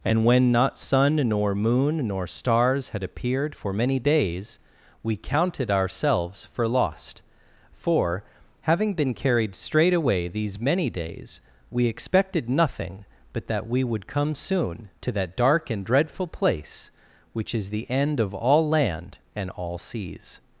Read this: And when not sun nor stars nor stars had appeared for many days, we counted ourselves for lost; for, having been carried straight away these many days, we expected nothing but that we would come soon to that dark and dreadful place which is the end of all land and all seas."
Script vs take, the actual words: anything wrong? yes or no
yes